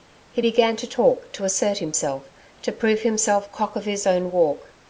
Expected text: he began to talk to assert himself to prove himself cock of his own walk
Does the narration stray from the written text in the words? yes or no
no